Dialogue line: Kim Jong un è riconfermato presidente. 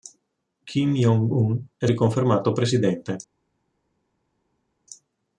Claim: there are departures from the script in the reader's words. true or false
false